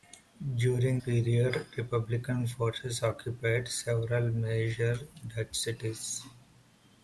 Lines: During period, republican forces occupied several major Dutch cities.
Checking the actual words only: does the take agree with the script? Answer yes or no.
yes